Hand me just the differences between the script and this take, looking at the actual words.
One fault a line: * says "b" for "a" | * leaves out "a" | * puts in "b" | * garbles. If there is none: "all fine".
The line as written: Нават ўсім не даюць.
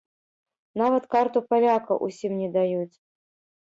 * puts in "карту паляка"